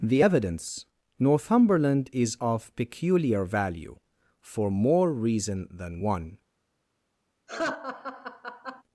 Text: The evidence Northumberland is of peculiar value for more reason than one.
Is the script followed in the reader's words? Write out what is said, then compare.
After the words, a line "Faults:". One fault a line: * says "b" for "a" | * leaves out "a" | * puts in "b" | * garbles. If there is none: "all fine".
The evidence Northumberland is of peculiar value for more reason than one.
Faults:
all fine